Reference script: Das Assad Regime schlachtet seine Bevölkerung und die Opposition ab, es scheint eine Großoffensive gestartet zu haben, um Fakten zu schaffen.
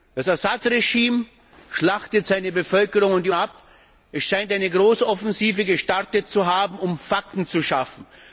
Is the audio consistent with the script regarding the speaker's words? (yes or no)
no